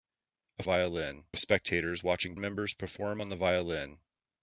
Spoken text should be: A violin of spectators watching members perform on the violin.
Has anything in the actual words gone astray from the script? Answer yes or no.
no